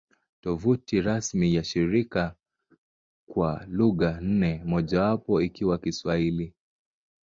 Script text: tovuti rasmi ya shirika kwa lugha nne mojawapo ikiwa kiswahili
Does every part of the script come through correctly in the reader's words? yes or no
yes